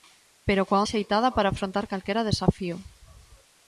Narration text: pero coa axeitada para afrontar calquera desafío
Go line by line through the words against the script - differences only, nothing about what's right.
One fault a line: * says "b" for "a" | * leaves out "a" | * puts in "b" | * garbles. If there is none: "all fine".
all fine